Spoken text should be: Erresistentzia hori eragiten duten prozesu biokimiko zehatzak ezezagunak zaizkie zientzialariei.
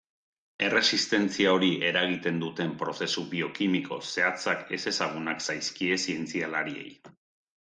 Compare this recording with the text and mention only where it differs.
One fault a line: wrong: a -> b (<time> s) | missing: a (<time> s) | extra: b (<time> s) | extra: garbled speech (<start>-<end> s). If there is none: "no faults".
no faults